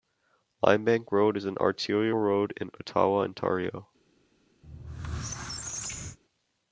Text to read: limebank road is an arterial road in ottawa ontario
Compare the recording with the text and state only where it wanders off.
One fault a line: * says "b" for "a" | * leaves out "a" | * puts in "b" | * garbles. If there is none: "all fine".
all fine